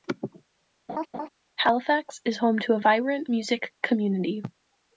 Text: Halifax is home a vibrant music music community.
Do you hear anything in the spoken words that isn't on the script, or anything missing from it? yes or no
yes